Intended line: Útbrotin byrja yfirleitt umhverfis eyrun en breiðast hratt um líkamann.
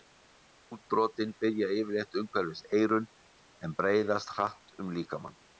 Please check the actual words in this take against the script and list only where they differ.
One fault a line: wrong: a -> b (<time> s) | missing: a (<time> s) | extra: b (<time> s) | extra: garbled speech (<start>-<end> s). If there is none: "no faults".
no faults